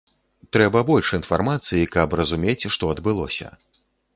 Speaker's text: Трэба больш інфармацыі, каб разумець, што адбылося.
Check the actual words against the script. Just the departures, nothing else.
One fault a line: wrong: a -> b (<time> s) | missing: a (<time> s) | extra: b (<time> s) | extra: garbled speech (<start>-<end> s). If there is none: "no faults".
no faults